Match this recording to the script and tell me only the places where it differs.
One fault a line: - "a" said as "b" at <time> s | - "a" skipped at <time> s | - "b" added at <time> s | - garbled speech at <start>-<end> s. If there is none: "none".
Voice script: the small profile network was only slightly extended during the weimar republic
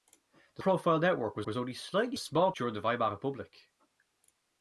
- "small" skipped at 0.6 s
- "was" added at 1.5 s
- "extended" said as "small" at 2.2 s